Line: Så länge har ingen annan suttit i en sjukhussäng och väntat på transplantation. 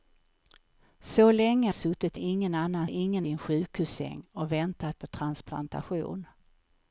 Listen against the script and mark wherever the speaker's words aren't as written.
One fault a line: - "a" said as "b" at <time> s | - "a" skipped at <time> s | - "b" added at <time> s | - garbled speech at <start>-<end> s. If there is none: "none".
- "har" said as "suttit" at 1.7 s
- "suttit" said as "ingen" at 2.9 s